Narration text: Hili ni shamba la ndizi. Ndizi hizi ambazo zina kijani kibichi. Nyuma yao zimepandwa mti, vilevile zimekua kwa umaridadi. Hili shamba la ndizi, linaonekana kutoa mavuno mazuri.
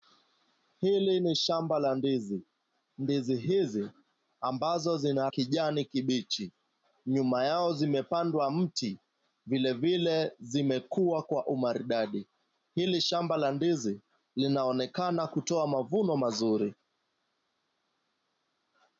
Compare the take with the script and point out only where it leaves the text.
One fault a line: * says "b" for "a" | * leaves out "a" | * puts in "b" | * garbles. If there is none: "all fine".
all fine